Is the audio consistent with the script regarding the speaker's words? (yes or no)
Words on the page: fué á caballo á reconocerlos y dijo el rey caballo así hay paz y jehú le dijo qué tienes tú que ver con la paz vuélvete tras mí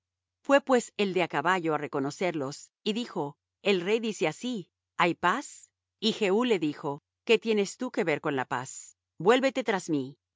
no